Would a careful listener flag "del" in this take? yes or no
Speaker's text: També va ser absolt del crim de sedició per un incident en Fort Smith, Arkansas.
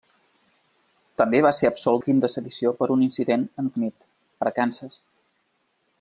yes